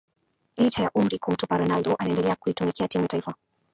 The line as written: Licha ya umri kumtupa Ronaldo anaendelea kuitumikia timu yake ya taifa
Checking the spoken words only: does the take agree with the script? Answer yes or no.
no